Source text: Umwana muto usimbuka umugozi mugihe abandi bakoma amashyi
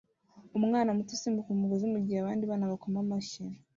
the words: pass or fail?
fail